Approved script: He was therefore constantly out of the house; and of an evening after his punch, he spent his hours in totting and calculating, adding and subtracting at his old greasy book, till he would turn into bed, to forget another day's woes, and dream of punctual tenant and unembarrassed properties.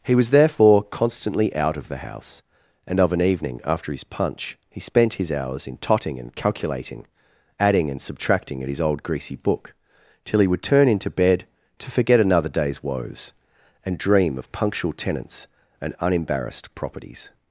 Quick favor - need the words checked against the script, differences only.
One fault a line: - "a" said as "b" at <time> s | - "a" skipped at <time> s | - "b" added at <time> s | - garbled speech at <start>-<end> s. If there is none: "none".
- "tenant" said as "tenants" at 14.9 s